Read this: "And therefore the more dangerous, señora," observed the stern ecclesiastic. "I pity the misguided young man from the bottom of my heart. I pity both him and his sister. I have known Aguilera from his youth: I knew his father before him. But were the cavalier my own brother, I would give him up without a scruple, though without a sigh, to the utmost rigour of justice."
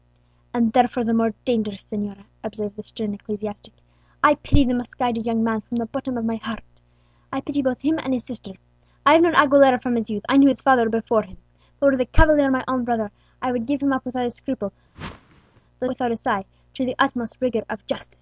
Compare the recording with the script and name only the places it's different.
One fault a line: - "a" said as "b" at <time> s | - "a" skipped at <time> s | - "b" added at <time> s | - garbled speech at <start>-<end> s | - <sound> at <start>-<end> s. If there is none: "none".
- whoosh at 14.9-15.6 s